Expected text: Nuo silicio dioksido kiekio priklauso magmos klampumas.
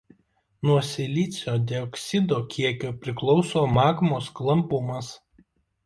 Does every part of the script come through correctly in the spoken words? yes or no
yes